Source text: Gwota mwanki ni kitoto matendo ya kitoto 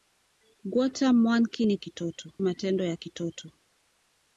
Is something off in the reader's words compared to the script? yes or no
no